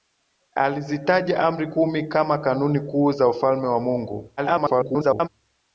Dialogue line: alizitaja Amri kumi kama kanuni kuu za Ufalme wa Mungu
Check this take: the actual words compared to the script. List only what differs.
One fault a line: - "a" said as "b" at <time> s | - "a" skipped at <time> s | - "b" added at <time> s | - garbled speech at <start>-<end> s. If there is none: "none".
- garbled speech at 4.4-5.3 s